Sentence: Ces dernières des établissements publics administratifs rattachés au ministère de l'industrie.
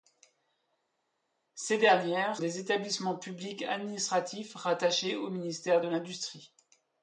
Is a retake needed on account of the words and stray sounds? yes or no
no